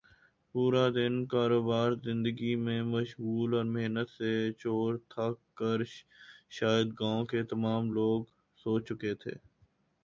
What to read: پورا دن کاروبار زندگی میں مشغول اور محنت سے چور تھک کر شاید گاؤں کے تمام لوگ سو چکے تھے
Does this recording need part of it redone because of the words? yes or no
no